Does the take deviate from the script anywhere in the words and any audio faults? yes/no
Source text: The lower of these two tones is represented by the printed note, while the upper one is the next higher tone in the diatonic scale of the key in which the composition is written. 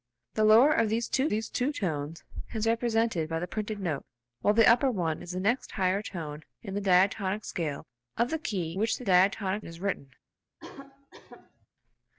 yes